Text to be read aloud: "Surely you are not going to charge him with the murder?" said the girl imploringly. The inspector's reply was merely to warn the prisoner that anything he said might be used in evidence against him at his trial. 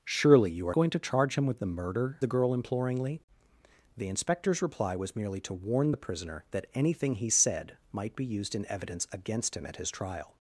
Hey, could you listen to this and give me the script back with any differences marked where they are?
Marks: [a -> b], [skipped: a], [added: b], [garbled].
"Surely you are [skipped: not] going to charge him with the murder?" [skipped: said] the girl imploringly. The inspector's reply was merely to warn the prisoner that anything he said might be used in evidence against him at his trial.